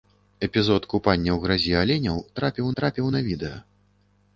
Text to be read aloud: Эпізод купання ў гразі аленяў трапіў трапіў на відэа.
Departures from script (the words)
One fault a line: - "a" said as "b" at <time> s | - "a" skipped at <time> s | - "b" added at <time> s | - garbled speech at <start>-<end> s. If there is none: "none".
none